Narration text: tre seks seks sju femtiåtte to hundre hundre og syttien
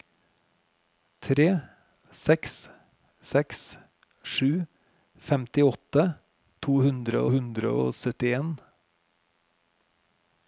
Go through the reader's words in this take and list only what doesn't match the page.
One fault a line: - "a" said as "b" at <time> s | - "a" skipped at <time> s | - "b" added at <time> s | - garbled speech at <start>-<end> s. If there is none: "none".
none